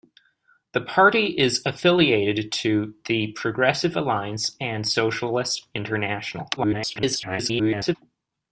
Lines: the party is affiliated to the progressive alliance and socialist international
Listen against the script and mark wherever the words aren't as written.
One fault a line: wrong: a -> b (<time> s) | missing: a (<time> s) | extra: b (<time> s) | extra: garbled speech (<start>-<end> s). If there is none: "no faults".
extra: garbled speech (6.6-8.0 s)